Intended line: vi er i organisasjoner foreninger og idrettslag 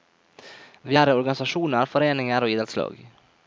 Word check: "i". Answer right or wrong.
right